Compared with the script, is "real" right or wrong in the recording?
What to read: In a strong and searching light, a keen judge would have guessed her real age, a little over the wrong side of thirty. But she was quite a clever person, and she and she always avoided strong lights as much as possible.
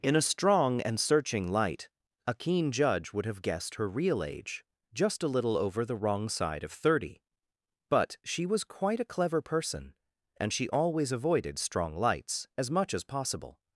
right